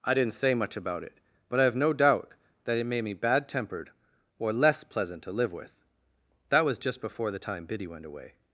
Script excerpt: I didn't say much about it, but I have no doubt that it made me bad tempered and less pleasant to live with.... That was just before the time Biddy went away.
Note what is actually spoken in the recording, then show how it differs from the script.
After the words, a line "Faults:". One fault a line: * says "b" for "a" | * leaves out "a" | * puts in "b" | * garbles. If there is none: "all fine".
I didn't say much about it, but I have no doubt that it made me bad tempered or less pleasant to live with.... That was just before the time Biddy went away.
Faults:
* says "or" for "and"